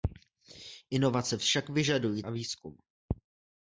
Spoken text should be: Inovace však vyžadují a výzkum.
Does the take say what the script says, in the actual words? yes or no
yes